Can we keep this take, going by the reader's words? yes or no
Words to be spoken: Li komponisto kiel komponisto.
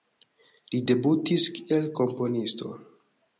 no